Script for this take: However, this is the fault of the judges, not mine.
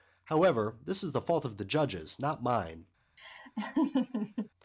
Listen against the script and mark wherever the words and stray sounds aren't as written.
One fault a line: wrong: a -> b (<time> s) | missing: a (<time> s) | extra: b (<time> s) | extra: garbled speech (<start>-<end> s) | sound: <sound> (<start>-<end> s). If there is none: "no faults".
sound: laugh (3.2-4.5 s)